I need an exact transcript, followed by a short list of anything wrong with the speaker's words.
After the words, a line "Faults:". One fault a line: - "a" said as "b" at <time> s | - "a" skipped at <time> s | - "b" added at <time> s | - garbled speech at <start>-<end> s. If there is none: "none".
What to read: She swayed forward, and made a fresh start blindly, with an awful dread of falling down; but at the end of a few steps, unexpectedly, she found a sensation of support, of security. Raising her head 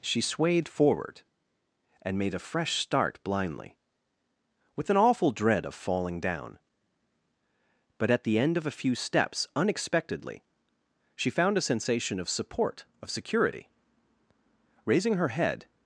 She swayed forward, and made a fresh start blindly, with an awful dread of falling down; but at the end of a few steps, unexpectedly, she found a sensation of support, of security. Raising her head
Faults:
none